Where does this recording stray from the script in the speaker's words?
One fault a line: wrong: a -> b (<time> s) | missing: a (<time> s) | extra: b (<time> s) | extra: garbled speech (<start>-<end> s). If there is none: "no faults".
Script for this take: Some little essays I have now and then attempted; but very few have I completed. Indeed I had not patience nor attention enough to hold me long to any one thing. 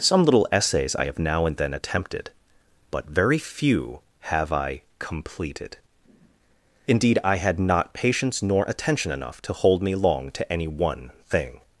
no faults